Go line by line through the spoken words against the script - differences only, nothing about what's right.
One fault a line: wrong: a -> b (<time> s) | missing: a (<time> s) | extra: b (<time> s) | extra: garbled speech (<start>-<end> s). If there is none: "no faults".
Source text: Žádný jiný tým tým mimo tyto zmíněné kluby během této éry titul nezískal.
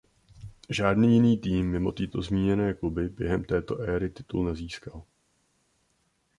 missing: tým (1.7 s)